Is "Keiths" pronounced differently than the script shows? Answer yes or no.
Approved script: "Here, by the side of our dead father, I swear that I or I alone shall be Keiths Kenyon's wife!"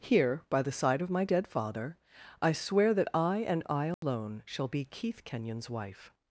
yes